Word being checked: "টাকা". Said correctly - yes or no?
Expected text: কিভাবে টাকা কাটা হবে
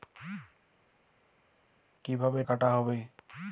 no